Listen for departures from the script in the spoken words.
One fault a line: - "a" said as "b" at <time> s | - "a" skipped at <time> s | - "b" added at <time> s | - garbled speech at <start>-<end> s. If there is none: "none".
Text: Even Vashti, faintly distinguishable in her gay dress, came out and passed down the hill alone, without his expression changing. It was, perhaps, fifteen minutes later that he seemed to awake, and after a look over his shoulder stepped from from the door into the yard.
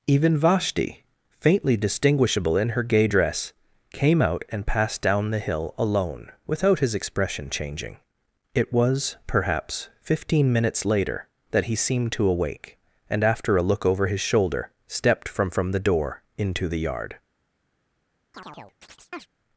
none